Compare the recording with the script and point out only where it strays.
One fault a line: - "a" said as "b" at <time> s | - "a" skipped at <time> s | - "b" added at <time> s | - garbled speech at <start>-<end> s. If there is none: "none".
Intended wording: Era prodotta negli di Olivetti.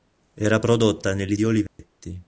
none